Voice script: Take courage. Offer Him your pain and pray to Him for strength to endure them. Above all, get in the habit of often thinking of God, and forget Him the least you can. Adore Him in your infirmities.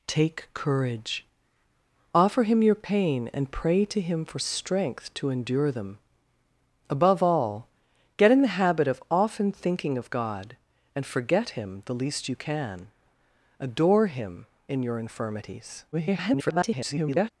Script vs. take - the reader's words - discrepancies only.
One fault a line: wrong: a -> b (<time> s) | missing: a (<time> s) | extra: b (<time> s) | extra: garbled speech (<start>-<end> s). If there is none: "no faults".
extra: garbled speech (15.9-17.3 s)